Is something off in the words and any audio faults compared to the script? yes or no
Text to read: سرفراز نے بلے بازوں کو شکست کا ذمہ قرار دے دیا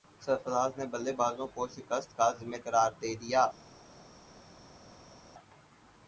no